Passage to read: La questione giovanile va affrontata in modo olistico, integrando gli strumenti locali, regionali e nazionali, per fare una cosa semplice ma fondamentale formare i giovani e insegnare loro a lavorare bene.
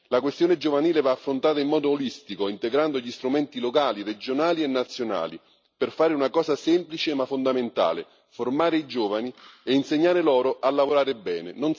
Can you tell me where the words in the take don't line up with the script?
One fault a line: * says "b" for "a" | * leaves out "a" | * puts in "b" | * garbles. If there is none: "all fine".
all fine